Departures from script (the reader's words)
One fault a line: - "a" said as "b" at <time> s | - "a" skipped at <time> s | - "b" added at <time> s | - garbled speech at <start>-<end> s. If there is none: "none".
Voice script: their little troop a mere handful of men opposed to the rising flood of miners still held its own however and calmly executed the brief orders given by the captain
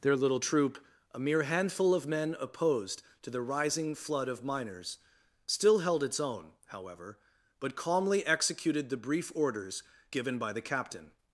- "and" said as "but" at 7.6 s